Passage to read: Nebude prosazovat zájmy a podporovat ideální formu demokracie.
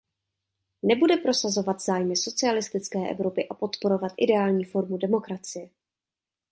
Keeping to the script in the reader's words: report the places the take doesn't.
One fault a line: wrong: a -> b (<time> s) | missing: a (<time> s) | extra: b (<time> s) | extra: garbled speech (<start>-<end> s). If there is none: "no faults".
extra: socialistické Evropy (2.1 s)